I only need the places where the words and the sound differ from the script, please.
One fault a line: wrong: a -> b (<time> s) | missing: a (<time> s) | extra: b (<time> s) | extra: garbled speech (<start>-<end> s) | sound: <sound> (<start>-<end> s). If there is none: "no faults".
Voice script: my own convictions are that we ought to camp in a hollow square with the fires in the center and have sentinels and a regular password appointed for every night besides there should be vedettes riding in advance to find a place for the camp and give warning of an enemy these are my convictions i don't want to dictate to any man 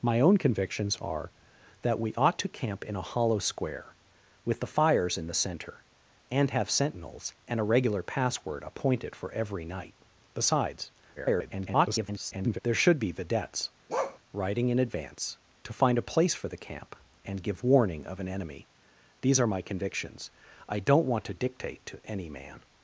extra: garbled speech (11.2-12.6 s)
sound: bark (13.9-14.2 s)